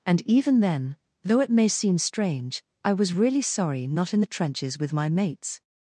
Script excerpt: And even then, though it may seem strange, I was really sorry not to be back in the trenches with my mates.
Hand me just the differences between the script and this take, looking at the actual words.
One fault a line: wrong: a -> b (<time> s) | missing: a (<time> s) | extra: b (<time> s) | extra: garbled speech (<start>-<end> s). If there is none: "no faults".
missing: to be back (4.1 s)